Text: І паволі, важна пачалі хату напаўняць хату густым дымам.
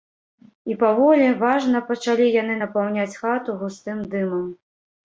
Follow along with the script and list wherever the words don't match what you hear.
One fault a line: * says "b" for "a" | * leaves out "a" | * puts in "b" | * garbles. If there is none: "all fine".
* says "яны" for "хату"